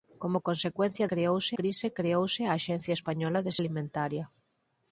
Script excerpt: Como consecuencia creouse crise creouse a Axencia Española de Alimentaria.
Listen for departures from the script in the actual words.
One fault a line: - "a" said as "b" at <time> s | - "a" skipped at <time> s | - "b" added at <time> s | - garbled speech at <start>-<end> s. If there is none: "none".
none